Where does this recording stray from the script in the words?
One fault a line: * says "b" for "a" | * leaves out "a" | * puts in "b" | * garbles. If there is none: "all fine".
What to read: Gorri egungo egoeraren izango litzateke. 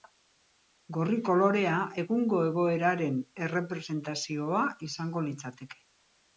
* puts in "kolorea"
* puts in "errepresentazioa"